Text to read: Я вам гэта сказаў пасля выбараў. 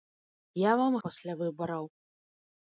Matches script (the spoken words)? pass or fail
fail